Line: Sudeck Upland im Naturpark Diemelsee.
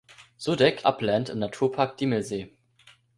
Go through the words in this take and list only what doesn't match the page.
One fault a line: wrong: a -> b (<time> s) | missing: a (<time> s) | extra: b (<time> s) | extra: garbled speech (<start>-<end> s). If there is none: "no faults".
no faults